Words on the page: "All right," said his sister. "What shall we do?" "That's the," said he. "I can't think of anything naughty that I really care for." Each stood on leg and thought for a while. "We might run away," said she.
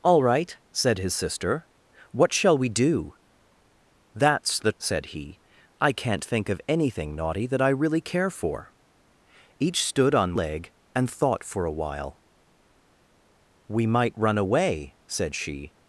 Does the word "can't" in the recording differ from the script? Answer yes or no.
no